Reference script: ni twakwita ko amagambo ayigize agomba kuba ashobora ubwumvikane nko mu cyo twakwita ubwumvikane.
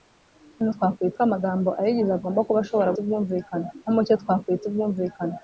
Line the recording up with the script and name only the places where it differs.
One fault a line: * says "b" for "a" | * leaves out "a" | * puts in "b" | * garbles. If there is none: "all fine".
all fine